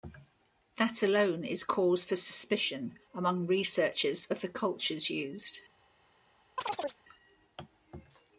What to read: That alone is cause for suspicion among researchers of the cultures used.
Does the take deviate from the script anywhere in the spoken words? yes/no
no